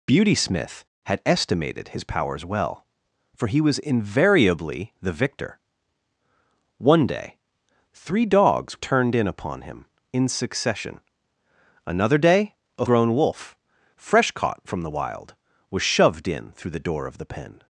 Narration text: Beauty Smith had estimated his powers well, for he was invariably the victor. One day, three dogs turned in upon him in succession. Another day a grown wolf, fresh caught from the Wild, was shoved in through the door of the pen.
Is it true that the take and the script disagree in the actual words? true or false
false